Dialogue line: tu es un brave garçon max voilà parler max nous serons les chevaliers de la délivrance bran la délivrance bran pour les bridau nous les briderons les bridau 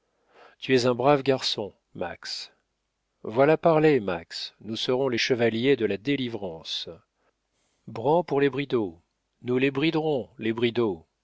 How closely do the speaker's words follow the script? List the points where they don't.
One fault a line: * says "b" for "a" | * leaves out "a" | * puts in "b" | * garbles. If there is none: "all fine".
* leaves out "la délivrance bran"